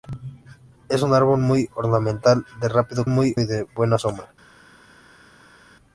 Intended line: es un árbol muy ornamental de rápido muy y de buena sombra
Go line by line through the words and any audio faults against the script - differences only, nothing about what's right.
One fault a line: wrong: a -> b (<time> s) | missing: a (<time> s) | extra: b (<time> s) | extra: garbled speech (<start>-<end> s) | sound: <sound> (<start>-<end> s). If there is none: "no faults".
no faults